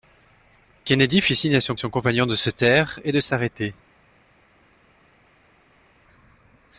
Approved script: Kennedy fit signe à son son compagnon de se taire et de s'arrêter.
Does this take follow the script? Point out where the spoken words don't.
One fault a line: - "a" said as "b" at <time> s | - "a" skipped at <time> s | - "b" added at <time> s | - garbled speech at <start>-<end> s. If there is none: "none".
none